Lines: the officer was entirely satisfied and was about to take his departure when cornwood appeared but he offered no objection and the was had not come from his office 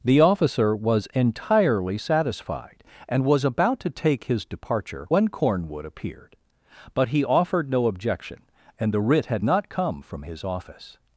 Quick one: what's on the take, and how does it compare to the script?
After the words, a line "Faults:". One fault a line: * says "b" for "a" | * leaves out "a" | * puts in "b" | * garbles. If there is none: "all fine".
the officer was entirely satisfied and was about to take his departure when cornwood appeared but he offered no objection and the writ had not come from his office
Faults:
* says "writ" for "was"